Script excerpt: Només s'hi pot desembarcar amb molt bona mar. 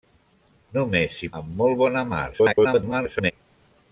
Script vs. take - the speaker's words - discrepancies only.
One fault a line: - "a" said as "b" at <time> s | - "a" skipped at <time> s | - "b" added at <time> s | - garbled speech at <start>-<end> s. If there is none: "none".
- "pot desembarcar" skipped at 1.3 s
- garbled speech at 2.3-3.3 s